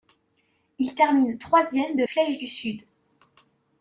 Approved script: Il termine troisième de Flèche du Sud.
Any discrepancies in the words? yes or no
no